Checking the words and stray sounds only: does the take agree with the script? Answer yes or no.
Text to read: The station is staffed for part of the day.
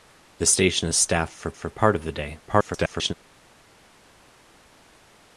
no